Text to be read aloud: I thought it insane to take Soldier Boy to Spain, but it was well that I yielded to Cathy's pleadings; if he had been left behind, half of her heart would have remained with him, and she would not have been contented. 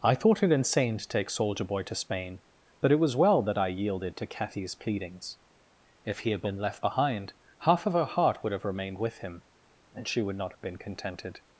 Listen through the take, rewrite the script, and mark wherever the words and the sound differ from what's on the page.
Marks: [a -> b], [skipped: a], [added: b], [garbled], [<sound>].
I thought it insane to take Soldier Boy to Spain, but it was well that I yielded to Cathy's pleadings; if he had been left behind, half of her heart would have remained with him, and she would not have been contented.